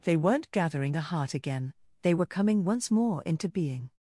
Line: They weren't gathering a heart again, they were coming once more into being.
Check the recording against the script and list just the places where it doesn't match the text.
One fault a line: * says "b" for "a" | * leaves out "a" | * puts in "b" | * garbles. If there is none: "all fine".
all fine